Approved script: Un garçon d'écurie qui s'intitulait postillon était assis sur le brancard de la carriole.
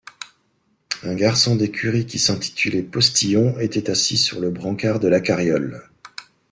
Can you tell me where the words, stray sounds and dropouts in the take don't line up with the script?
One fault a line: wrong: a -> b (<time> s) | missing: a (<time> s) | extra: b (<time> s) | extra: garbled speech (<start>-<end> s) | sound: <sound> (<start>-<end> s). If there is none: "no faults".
no faults